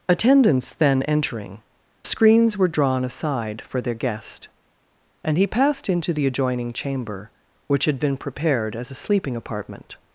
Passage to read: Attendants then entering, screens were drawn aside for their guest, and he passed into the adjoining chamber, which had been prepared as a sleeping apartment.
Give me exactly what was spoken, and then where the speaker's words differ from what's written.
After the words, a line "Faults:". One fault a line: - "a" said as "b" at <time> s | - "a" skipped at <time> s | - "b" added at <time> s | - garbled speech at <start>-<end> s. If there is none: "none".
Attendants then entering, screens were drawn aside for their guest, and he passed into the adjoining chamber, which had been prepared as a sleeping apartment.
Faults:
none